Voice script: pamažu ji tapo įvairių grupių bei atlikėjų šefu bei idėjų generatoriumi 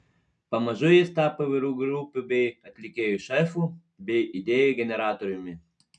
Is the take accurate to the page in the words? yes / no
no